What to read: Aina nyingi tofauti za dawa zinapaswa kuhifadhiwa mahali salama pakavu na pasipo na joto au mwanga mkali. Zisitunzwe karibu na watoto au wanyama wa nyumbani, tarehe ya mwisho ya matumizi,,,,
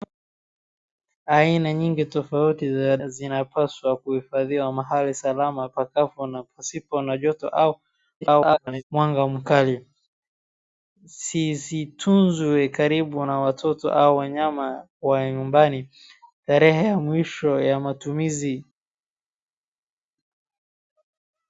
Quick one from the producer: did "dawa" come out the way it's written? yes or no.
no